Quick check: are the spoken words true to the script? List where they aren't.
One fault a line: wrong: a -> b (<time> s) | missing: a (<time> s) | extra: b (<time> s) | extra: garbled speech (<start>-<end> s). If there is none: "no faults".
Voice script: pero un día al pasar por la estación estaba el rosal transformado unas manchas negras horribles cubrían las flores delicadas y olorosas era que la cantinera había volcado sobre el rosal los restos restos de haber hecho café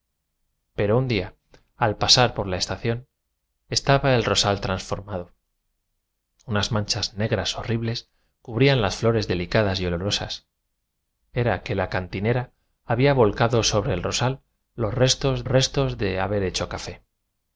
no faults